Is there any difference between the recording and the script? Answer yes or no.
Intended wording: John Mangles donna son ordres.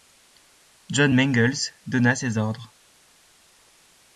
yes